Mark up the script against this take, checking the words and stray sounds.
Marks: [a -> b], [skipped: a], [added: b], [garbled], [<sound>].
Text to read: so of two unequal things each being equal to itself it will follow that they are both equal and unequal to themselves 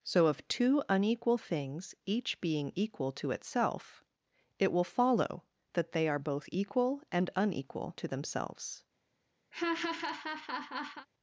so of two unequal things each being equal to itself it will follow that they are both equal and unequal to themselves [laugh]